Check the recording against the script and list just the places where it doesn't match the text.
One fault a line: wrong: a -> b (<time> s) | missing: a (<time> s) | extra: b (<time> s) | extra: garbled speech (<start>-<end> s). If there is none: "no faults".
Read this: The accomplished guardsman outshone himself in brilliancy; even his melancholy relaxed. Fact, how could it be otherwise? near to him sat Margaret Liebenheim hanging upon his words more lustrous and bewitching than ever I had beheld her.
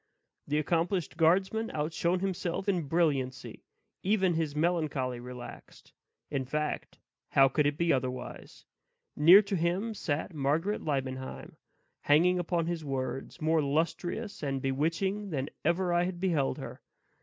extra: In (6.3 s)